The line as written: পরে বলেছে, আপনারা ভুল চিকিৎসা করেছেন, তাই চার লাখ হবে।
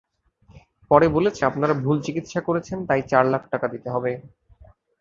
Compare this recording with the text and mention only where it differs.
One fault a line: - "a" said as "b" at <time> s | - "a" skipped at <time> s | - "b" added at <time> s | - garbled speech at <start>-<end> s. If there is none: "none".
- "টাকা দিতে" added at 3.5 s